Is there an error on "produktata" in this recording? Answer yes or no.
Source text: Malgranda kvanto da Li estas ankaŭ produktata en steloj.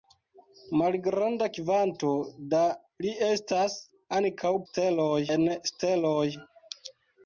yes